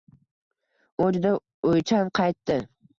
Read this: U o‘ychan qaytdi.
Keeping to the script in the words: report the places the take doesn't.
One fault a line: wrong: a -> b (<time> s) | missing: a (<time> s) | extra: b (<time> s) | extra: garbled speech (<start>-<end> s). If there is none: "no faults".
extra: juda (1.1 s)